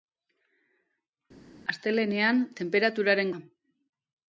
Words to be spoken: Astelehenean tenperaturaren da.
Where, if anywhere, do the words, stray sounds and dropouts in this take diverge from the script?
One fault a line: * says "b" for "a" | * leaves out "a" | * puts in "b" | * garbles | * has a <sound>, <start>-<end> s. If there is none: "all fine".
all fine